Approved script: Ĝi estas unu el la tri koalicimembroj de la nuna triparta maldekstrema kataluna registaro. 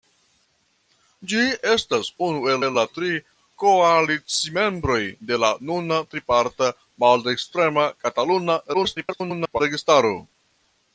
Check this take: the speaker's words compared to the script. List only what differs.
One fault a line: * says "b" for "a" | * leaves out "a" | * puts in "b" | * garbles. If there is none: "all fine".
* puts in "el"
* garbles